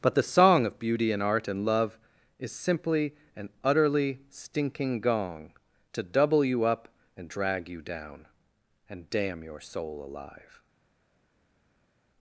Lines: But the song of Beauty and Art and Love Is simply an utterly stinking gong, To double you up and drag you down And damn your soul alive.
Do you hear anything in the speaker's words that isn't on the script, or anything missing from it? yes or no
no